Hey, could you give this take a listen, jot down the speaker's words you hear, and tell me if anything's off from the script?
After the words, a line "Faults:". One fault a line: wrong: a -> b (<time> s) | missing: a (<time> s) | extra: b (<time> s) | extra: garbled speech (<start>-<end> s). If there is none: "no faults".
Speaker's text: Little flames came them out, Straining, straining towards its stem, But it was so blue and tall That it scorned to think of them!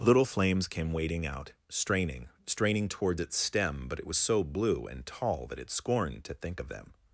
Little flames came wading out, Straining, straining towards its stem, But it was so blue and tall That it scorned to think of them!
Faults:
wrong: them -> wading (0.9 s)